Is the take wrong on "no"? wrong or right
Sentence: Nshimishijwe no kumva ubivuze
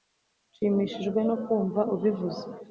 right